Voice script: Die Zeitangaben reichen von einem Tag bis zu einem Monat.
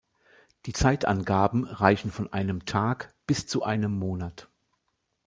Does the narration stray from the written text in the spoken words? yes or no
no